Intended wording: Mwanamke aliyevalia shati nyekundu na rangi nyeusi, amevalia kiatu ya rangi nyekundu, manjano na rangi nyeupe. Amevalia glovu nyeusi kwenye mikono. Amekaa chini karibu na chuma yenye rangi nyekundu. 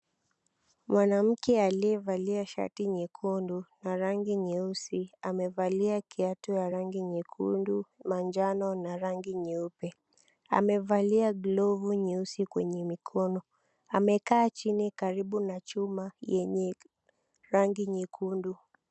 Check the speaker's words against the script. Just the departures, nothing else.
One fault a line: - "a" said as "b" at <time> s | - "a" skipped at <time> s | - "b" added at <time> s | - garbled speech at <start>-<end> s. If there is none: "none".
none